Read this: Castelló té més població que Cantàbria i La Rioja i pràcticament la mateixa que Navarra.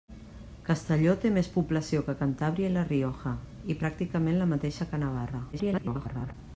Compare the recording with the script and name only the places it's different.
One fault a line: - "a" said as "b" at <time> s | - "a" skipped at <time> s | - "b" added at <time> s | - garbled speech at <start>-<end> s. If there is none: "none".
- garbled speech at 5.5-6.3 s